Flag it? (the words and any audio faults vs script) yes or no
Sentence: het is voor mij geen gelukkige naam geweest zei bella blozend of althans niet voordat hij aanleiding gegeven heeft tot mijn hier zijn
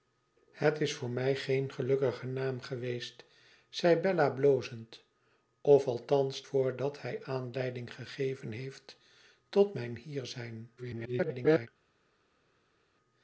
yes